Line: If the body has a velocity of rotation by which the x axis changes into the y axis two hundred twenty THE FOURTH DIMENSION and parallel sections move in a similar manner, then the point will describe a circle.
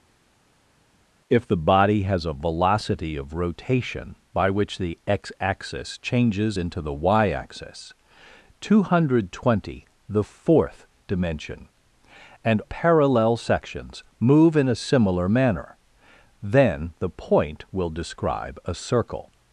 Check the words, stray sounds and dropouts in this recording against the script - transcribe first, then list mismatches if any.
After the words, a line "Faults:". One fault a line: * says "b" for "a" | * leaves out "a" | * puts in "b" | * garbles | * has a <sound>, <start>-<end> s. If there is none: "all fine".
If the body has a velocity of rotation by which the x axis changes into the y axis two hundred twenty THE FOURTH DIMENSION and parallel sections move in a similar manner, then the point will describe a circle.
Faults:
all fine